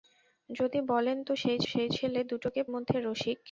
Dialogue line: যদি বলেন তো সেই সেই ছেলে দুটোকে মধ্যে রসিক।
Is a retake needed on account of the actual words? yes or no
no